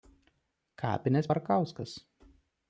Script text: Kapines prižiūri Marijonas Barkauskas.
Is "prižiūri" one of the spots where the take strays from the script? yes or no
yes